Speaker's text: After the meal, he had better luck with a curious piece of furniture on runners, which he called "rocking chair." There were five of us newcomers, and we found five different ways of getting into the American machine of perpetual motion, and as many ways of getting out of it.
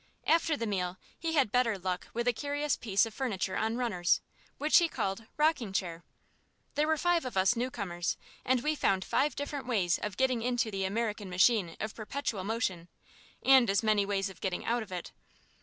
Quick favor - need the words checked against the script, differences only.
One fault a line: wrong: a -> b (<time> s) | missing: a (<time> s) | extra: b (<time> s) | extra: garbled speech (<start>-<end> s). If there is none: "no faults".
no faults